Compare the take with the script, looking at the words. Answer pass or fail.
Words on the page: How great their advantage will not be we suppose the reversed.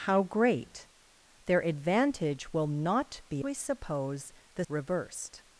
pass